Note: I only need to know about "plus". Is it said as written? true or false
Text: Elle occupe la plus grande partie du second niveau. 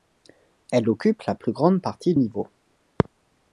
true